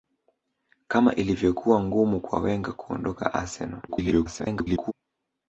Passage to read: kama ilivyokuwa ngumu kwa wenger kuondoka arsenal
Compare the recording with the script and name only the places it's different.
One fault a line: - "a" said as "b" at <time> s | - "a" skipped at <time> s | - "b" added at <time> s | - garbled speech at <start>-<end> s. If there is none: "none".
- garbled speech at 3.9-4.9 s